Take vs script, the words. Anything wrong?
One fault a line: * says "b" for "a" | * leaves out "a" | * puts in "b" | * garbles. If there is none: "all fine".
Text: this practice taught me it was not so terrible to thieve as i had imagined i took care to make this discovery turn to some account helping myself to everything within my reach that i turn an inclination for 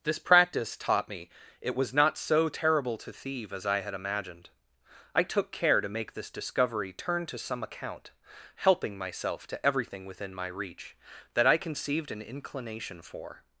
* says "conceived" for "turn"